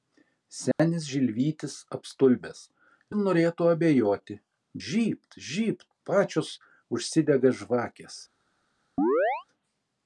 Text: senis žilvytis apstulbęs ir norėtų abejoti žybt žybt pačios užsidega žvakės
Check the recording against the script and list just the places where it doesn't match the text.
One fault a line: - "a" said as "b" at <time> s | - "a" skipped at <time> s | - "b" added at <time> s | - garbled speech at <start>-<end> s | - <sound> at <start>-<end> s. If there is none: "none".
- dropout at 0.7-0.8 s
- chirp at 9.0-9.5 s